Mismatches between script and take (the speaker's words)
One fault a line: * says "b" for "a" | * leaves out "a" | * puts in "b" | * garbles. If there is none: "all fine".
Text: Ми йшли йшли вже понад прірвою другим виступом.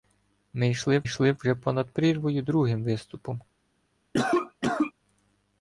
all fine